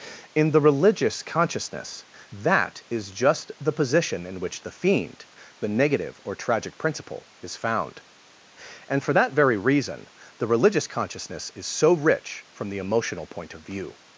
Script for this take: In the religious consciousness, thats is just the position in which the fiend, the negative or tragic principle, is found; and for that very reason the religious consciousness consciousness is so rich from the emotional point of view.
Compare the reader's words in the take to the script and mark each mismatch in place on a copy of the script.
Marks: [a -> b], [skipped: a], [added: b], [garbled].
In the religious consciousness, [thats -> that] is just the position in which the fiend, the negative or tragic principle, is found; and for that very reason the religious consciousness [skipped: consciousness] is so rich from the emotional point of view.